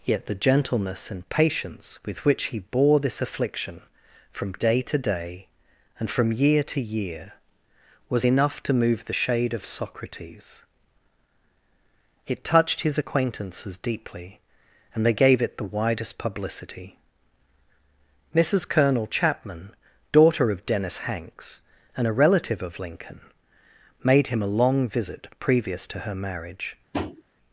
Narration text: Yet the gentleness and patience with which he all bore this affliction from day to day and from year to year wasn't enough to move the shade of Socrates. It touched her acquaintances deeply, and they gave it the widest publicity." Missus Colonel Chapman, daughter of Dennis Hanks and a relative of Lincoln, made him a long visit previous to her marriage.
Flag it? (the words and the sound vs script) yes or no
yes